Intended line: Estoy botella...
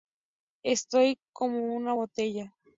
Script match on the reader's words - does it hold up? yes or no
no